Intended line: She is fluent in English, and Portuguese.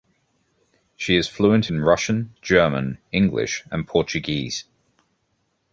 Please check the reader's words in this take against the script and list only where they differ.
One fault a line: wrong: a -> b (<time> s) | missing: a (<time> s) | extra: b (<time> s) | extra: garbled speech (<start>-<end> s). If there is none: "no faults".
extra: Russian German (1.8 s)